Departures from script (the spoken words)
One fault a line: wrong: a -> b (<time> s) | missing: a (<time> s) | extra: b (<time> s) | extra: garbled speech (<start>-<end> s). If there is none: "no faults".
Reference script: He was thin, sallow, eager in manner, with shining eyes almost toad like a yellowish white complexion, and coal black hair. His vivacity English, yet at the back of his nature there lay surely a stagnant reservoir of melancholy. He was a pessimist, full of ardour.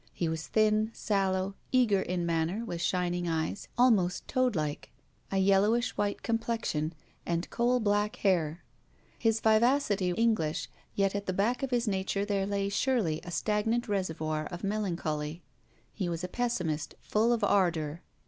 no faults